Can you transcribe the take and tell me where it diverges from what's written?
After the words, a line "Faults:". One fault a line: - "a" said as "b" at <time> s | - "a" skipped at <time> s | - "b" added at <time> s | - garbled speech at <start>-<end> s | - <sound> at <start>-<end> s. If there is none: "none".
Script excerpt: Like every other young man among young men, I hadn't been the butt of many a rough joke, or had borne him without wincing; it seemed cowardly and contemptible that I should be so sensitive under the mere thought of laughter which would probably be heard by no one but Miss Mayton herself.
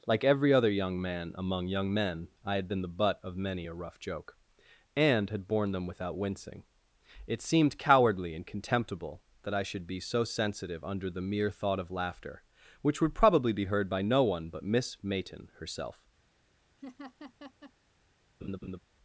Like every other young man among young men, I had been the butt of many a rough joke, and had borne them without wincing; it seemed cowardly and contemptible that I should be so sensitive under the mere thought of laughter which would probably be heard by no one but Miss Mayton herself.
Faults:
- "hadn't" said as "had" at 2.5 s
- "or" said as "and" at 4.9 s
- "him" said as "them" at 5.7 s
- laugh at 16.8-17.7 s
- laugh at 18.4-18.8 s